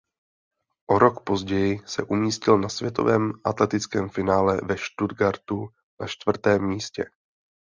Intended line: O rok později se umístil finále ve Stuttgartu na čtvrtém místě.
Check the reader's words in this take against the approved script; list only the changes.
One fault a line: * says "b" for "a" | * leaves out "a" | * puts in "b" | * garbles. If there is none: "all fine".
* puts in "na světovém atletickém"